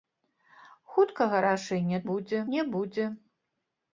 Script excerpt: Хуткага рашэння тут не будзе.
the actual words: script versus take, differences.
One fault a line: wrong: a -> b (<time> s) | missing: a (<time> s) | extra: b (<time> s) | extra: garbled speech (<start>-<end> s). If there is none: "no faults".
wrong: тут -> будзе (2.1 s)